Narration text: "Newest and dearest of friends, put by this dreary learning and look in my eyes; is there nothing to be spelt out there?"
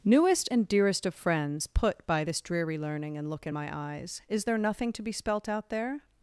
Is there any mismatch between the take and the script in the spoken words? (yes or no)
no